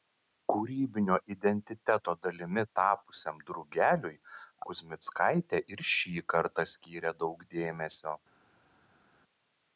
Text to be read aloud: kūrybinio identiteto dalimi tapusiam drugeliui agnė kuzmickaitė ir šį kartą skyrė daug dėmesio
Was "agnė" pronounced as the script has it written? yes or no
no